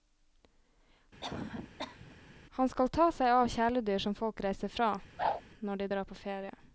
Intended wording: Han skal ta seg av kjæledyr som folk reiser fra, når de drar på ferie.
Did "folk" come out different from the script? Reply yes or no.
no